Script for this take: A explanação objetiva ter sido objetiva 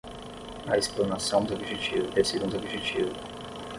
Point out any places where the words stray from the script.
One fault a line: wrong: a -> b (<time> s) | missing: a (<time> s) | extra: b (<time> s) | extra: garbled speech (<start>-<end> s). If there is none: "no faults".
no faults